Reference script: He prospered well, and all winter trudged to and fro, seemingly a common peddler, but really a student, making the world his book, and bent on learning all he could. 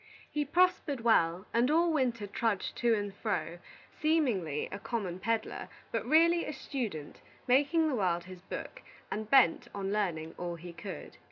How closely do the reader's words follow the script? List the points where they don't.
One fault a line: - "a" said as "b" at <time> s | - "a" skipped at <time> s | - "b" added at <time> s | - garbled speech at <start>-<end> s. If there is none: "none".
none